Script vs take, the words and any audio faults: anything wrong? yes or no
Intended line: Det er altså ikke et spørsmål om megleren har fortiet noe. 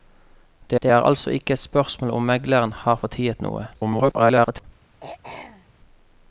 yes